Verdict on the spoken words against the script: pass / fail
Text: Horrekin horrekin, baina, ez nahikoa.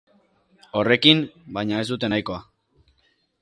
fail